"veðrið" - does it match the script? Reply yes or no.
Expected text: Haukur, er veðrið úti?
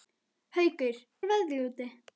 yes